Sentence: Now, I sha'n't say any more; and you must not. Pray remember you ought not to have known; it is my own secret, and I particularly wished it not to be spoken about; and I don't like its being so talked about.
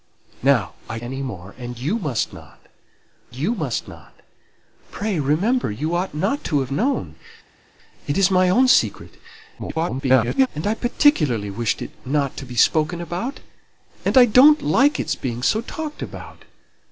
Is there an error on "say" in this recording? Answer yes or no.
yes